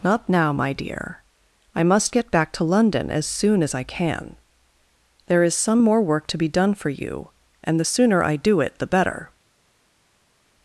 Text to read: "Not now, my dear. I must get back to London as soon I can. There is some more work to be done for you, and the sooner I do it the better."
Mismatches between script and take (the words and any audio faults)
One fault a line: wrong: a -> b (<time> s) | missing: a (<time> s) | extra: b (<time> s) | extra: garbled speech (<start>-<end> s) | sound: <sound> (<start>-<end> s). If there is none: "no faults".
extra: as (3.6 s)